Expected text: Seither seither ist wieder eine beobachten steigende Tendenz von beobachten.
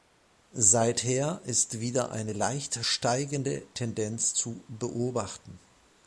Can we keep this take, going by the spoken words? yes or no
no